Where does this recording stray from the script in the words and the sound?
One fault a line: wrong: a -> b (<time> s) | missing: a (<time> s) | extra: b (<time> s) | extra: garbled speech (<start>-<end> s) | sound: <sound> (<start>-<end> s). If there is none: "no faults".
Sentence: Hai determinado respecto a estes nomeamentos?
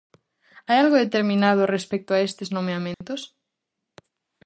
extra: algo (0.8 s)
sound: dropout (2.9-3.0 s)